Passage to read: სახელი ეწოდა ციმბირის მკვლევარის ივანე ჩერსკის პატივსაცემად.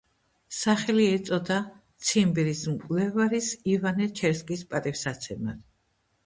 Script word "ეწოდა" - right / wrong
right